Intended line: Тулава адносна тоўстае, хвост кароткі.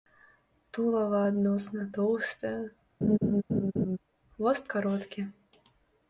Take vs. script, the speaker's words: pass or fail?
pass